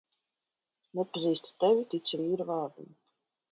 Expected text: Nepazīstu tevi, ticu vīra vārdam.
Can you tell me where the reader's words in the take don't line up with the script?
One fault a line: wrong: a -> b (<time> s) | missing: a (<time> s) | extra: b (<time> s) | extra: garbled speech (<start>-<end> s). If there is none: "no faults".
no faults